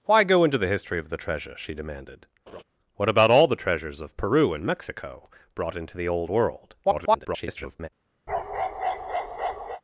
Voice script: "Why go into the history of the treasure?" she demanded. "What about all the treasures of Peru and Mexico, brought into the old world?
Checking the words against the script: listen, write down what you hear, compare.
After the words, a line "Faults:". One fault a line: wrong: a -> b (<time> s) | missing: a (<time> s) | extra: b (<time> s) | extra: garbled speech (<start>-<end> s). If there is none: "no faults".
"Why go into the history of the treasure?" she demanded. "What about all the treasures of Peru and Mexico, brought into the old world? [garbled]
Faults:
extra: garbled speech (6.8-7.9 s)